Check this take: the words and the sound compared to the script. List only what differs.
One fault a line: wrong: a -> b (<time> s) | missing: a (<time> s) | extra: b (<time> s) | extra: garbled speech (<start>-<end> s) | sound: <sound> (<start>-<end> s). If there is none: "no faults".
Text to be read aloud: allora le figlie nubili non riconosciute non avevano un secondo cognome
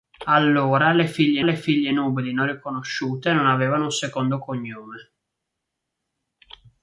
extra: le figlie (1.4 s)